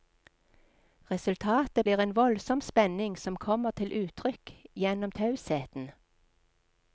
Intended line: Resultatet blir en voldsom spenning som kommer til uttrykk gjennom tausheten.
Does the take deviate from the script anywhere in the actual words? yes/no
no